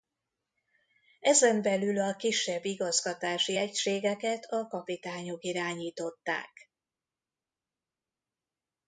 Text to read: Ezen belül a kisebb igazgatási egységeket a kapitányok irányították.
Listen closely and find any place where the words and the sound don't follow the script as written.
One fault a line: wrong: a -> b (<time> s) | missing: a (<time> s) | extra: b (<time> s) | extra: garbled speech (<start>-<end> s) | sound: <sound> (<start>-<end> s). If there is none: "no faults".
no faults